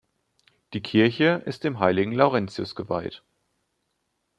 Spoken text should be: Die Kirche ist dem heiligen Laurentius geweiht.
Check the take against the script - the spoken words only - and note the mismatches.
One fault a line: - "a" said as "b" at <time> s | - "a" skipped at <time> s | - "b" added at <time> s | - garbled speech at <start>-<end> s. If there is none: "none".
none